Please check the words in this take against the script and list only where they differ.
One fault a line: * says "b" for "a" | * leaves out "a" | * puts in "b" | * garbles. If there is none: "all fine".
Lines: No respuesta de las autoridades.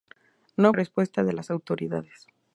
all fine